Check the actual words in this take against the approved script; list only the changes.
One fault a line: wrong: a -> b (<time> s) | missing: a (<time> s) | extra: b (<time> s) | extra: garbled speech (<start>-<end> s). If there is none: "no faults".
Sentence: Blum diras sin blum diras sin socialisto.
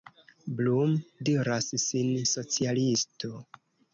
missing: blum diras sin (2.1 s)